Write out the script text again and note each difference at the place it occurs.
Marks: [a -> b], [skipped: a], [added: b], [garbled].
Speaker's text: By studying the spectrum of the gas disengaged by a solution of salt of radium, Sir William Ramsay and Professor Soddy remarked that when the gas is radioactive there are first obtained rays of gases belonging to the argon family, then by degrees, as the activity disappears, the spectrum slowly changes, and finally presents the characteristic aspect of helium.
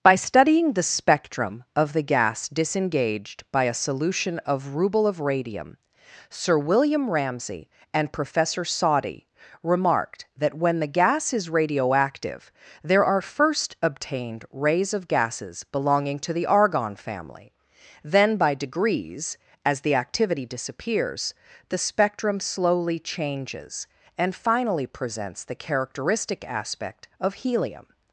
By studying the spectrum of the gas disengaged by a solution of [salt -> ruble] of radium, Sir William Ramsay and Professor Soddy remarked that when the gas is radioactive there are first obtained rays of gases belonging to the argon family, then by degrees, as the activity disappears, the spectrum slowly changes, and finally presents the characteristic aspect of helium.